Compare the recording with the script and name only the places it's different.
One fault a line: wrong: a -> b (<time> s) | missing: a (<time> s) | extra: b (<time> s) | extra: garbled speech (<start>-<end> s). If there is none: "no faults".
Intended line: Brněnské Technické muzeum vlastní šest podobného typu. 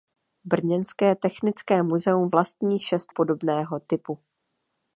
no faults